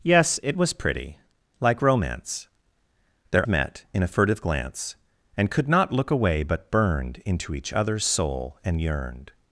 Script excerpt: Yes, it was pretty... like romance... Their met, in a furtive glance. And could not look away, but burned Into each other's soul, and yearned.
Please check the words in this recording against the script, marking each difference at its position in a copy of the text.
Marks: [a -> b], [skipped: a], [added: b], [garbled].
Yes, it was pretty... like romance... Their met, in a furtive glance. And could not look away, but burned Into each other's soul, and yearned.